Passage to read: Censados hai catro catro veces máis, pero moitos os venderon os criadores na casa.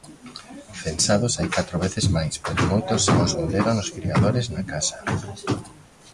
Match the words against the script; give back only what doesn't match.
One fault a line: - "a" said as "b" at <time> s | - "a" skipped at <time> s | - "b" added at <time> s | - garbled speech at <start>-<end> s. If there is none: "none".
- "catro" skipped at 1.8 s
- "xa" added at 3.0 s